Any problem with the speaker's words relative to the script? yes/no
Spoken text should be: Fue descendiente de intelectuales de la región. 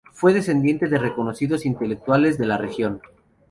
yes